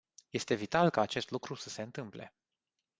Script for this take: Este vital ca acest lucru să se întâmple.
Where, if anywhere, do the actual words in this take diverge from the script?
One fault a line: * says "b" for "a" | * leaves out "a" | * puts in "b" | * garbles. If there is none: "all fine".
all fine